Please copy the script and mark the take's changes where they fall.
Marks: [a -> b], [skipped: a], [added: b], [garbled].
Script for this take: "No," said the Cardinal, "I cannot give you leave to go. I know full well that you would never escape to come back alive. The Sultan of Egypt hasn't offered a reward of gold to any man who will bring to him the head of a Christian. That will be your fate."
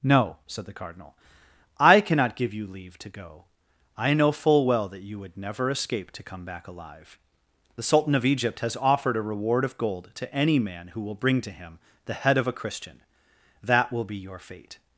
"No," said the Cardinal, "I cannot give you leave to go. I know full well that you would never escape to come back alive. The Sultan of Egypt [hasn't -> has] offered a reward of gold to any man who will bring to him the head of a Christian. That will be your fate."